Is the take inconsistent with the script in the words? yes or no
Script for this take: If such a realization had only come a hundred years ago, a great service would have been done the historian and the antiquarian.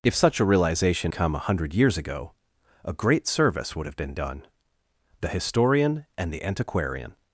yes